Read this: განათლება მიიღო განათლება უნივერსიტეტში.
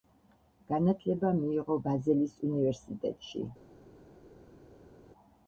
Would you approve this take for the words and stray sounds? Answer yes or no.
no